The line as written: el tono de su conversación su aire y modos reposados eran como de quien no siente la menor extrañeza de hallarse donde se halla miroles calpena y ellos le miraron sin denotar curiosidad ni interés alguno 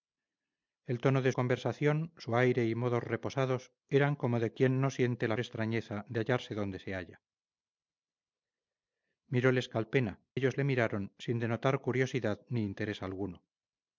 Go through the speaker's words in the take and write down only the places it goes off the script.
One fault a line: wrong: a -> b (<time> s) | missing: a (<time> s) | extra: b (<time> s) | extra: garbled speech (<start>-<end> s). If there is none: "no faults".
missing: su (1.3 s)
missing: menor (5.4 s)
missing: y (10.2 s)